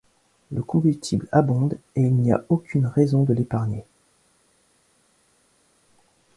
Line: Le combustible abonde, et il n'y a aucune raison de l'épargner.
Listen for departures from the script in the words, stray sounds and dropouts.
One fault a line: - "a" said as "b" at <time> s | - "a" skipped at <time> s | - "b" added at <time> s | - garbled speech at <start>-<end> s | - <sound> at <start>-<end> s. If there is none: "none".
none